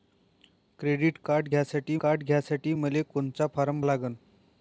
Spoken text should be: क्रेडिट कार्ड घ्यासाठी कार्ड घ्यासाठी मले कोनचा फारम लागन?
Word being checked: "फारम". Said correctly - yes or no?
yes